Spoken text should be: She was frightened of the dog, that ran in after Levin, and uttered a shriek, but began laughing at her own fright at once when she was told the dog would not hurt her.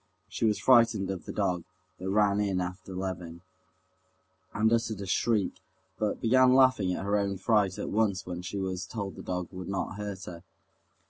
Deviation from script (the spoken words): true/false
false